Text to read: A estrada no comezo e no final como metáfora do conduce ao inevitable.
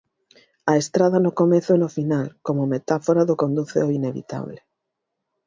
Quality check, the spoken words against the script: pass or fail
pass